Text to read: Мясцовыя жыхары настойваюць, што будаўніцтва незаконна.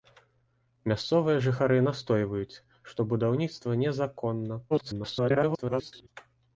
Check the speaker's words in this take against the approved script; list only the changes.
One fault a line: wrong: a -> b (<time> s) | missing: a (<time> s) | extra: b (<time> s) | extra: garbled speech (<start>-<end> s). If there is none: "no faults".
extra: garbled speech (4.7-6.1 s)